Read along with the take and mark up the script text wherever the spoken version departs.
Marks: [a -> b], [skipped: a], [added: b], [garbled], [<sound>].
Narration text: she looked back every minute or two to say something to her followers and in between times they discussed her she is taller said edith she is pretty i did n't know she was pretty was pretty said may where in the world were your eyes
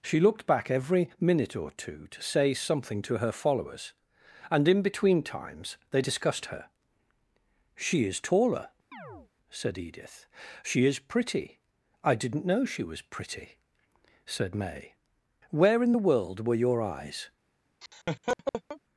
she looked back every minute or two to say something to her followers and in between times they discussed her she is taller [chirp] said edith she is pretty i did n't know she was pretty [skipped: was pretty] said may where in the world were your eyes [laugh]